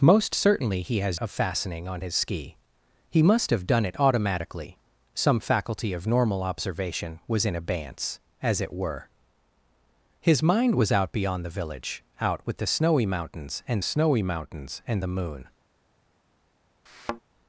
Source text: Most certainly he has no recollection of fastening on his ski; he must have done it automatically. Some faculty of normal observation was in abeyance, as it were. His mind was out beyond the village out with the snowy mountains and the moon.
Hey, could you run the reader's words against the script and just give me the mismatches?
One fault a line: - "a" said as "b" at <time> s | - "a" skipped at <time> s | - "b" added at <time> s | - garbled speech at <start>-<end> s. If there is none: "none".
- "no recollection" skipped at 1.2 s
- "snowy mountains and" added at 13.8 s